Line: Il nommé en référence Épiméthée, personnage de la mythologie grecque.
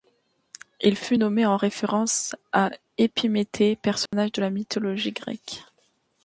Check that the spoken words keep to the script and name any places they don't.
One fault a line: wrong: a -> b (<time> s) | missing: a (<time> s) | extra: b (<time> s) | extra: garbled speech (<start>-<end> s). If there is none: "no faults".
extra: fut (0.9 s)
extra: à (2.5 s)